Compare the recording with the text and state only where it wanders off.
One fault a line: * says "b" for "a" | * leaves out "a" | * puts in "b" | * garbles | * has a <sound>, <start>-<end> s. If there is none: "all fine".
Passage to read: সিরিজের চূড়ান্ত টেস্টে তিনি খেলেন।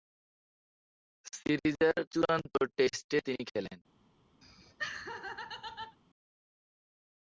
* has a laugh, 4.4-6.0 s